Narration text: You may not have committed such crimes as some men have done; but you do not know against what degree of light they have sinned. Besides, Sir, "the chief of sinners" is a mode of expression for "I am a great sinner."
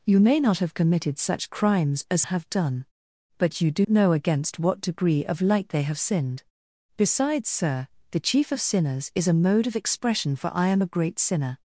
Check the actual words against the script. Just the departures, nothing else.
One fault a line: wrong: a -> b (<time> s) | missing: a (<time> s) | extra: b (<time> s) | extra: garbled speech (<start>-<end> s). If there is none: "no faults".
missing: some men (2.2 s)
missing: not (3.9 s)